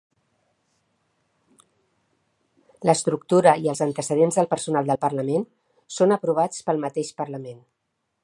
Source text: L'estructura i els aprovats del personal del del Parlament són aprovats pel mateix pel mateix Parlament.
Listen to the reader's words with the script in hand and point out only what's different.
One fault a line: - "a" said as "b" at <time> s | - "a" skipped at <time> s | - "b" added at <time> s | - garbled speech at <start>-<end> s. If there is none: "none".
- "aprovats" said as "antecedents" at 3.9 s
- "del" skipped at 5.0 s
- "pel mateix" skipped at 7.1 s